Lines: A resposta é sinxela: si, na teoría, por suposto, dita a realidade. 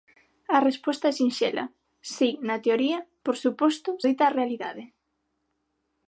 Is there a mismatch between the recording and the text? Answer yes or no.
no